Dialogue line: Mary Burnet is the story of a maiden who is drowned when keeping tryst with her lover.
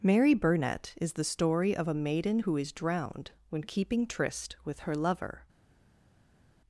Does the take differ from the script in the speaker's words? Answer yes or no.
no